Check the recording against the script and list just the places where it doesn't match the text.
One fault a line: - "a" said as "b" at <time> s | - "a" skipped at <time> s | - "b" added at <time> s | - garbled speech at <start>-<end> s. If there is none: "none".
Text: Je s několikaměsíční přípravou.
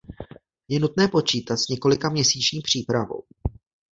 - "nutné počítat" added at 0.8 s